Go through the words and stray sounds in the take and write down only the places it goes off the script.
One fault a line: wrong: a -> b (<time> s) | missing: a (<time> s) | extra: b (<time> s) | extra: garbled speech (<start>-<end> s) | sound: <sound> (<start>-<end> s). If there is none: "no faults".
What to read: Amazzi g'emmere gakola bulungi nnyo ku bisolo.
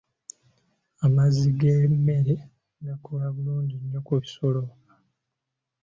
no faults